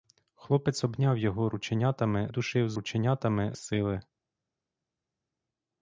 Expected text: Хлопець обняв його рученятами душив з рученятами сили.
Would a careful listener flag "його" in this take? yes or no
no